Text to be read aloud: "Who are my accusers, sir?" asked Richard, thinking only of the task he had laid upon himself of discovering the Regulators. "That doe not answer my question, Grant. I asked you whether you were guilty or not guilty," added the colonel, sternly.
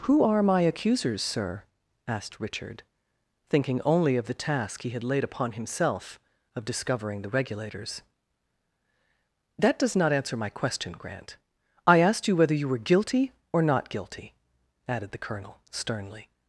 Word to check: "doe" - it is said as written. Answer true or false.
false